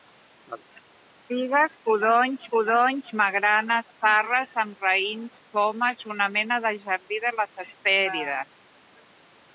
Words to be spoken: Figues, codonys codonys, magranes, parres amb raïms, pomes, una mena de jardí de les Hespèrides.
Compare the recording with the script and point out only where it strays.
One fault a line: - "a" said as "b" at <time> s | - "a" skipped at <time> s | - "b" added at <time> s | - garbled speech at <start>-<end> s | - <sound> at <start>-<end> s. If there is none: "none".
none